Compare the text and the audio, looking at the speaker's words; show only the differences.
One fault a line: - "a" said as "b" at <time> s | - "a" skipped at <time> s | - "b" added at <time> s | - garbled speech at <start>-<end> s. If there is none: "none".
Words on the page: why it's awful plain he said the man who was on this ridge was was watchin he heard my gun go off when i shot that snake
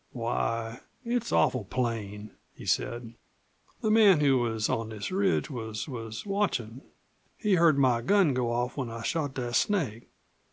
none